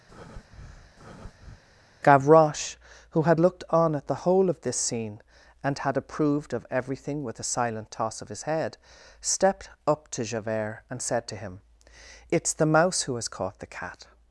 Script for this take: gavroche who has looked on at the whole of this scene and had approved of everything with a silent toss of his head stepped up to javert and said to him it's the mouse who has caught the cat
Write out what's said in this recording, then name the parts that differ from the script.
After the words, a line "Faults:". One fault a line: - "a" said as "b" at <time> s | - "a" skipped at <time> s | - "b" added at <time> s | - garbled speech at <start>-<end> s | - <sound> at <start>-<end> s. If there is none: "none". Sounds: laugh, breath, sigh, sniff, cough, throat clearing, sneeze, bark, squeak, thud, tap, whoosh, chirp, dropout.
gavroche who had looked on at the whole of this scene and had approved of everything with a silent toss of his head stepped up to javert and said to him it's the mouse who has caught the cat
Faults:
- breath at 0.1-1.6 s
- "has" said as "had" at 3.2 s